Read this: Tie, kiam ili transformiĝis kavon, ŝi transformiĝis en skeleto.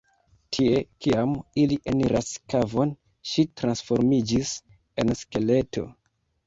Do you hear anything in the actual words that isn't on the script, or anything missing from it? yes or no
yes